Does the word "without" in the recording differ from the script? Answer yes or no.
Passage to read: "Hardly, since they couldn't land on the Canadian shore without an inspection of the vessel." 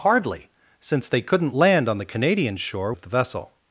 yes